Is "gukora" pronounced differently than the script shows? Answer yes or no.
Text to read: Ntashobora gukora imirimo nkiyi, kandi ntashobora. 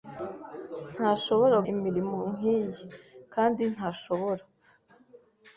yes